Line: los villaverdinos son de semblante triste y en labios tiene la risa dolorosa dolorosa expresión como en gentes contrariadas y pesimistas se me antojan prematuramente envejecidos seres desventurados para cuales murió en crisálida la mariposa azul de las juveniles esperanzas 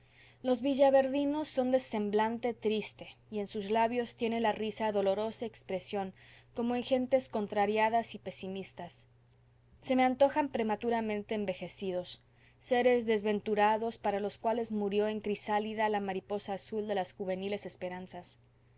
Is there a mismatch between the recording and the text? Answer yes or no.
yes